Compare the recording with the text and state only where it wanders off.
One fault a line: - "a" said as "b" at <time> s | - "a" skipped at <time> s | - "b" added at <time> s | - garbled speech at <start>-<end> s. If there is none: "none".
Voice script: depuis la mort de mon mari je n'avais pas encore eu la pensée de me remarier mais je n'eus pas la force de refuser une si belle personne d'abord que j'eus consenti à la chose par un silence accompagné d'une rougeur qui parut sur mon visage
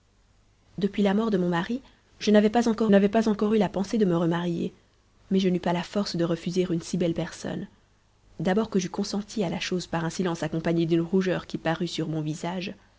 - "n'avais pas encore" added at 2.9 s